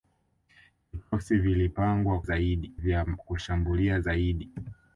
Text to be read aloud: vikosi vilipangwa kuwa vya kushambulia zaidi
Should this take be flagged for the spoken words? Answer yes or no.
yes